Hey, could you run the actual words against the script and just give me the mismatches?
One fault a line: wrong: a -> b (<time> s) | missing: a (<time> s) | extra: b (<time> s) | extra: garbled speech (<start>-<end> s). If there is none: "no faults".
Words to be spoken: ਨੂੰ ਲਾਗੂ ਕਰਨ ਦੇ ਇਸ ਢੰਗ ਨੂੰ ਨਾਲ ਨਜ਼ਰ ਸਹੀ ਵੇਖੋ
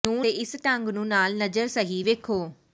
missing: ਲਾਗੂ ਕਰਨ (0.2 s)